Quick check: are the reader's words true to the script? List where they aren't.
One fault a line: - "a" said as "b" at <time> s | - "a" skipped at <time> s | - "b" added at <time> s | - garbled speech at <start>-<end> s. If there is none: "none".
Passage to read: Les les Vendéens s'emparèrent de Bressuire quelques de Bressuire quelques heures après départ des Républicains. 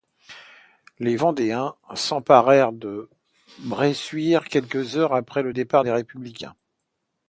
- "les" skipped at 1.1 s
- "de Bressuire quelques" skipped at 5.0 s
- "le" added at 5.4 s